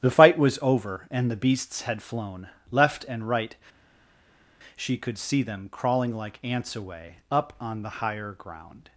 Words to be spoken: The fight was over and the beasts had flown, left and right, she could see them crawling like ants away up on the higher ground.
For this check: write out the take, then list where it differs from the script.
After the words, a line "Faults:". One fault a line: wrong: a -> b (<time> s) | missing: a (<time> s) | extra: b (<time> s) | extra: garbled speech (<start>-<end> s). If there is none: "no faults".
The fight was over and the beasts had flown, left and right, she could see them crawling like ants away up on the higher ground.
Faults:
no faults